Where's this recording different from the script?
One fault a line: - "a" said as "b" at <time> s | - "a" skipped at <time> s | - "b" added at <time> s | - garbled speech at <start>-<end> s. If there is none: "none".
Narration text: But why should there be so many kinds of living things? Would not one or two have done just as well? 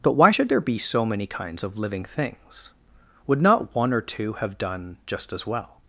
none